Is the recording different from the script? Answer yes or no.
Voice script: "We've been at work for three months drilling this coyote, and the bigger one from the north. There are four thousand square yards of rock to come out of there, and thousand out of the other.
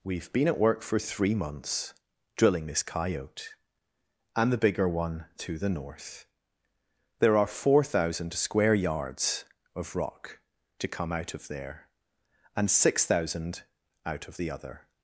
yes